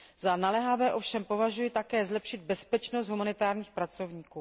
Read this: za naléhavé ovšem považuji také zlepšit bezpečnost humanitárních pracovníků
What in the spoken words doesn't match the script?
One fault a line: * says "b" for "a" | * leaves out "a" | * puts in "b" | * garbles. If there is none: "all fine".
all fine